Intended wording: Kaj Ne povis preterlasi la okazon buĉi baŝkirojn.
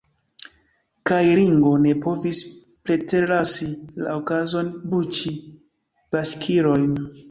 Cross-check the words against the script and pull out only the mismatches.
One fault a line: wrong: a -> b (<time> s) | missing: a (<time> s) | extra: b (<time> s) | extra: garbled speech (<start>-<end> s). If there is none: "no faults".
extra: Ringo (1.4 s)